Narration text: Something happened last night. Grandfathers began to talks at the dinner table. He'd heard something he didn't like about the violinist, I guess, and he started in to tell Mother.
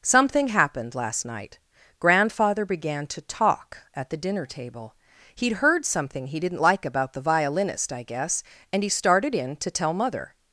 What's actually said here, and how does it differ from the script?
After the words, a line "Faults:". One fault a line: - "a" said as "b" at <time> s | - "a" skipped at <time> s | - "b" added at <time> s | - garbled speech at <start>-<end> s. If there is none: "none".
Something happened last night. Grandfather began to talk at the dinner table. He'd heard something he didn't like about the violinist, I guess, and he started in to tell Mother.
Faults:
- "Grandfathers" said as "Grandfather" at 2.0 s
- "talks" said as "talk" at 3.2 s